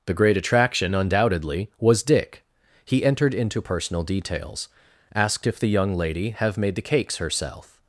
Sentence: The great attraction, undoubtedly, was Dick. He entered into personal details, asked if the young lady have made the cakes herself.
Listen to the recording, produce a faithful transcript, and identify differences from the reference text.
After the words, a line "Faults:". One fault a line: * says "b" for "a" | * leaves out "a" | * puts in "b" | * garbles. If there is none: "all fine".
The great attraction, undoubtedly, was Dick. He entered into personal details, asked if the young lady have made the cakes herself.
Faults:
all fine